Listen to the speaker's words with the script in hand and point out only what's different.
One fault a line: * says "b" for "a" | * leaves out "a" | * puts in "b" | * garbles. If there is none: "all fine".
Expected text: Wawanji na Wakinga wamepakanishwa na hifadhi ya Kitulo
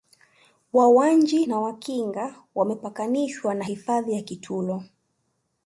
all fine